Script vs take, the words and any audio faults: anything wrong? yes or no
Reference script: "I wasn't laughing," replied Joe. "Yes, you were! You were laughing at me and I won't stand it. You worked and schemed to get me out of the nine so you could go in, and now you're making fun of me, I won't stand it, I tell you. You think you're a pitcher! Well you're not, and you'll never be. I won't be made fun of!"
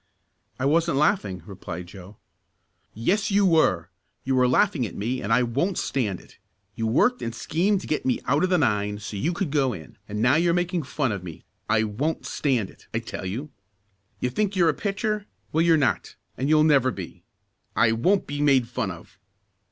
no